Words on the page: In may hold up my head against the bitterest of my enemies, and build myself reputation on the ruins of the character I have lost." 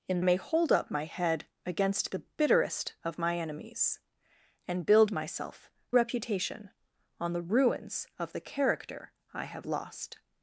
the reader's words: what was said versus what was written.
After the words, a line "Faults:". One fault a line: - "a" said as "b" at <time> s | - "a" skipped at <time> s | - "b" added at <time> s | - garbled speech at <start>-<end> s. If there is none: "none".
In may hold up my head against the bitterest of my enemies, and build myself reputation on the ruins of the character I have lost."
Faults:
none